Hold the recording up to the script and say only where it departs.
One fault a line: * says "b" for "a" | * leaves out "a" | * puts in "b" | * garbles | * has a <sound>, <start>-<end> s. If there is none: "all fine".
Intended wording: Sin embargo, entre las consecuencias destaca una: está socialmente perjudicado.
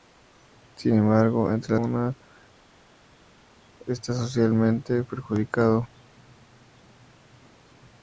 * leaves out "las consecuencias destaca"